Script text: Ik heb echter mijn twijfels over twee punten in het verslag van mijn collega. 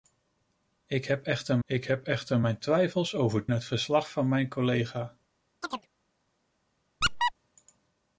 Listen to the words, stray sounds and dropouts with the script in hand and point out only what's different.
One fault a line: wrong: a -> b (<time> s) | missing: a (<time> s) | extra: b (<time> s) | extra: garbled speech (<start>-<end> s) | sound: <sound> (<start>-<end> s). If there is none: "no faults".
extra: ik heb echter (1.6 s)
missing: twee punten in (3.5 s)
sound: chirp (5.6-5.9 s)
sound: squeak (7.0-7.3 s)